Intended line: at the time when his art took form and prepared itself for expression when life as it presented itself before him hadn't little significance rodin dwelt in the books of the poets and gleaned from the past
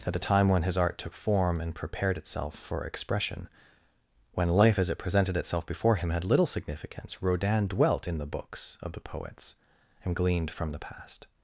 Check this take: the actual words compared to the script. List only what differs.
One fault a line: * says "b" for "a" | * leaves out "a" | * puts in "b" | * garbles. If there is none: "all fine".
* says "had" for "hadn't"